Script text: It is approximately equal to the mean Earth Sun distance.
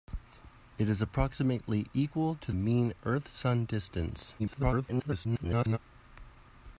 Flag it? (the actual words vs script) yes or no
yes